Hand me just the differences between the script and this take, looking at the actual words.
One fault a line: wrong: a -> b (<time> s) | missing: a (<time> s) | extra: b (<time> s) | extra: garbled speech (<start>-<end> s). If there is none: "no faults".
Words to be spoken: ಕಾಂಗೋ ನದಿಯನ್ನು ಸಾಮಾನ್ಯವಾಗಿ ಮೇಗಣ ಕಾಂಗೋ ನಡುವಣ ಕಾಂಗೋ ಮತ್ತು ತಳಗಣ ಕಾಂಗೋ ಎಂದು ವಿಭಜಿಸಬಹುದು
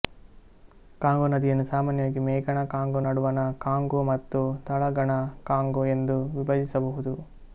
no faults